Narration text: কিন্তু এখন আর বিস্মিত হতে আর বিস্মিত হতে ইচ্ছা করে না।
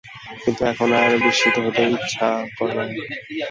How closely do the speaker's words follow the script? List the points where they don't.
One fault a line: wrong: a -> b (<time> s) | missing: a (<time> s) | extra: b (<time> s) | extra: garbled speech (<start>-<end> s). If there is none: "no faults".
missing: আর বিস্মিত হতে (1.8 s)